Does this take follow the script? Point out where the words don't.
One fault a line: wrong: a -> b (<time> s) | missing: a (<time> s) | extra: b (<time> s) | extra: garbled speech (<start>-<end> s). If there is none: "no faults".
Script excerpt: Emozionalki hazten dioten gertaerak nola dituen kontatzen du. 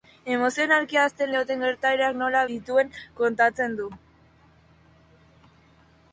no faults